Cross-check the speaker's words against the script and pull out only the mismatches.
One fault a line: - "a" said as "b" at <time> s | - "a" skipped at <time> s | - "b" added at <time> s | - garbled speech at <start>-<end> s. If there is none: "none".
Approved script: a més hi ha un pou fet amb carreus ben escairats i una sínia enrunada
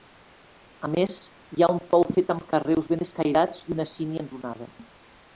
none